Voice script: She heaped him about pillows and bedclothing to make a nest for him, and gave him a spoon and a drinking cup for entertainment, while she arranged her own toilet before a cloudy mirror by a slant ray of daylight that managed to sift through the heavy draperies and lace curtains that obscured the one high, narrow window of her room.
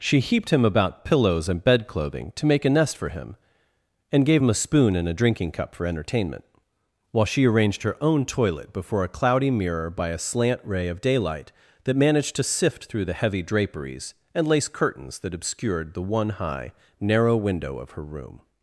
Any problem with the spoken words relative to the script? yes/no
no